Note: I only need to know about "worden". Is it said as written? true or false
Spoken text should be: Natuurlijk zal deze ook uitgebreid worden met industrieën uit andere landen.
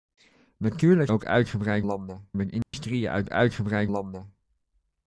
false